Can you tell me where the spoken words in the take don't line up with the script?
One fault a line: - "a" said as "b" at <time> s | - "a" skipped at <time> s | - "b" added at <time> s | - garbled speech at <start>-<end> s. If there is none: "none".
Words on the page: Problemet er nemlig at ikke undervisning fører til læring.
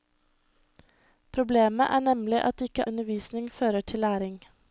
none